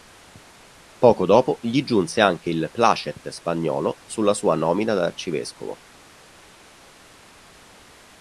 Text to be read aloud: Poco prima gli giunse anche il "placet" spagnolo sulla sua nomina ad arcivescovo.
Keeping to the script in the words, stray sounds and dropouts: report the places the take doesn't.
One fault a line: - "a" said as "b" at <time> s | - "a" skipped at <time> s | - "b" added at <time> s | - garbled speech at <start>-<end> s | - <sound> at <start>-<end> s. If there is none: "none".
- "prima" said as "dopo" at 1.3 s